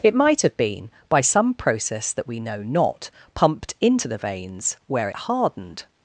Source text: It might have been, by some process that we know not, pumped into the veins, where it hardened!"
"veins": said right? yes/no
yes